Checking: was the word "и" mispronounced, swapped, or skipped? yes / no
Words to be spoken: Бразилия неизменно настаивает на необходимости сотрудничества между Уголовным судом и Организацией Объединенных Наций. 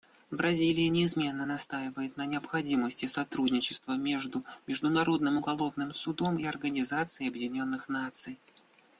no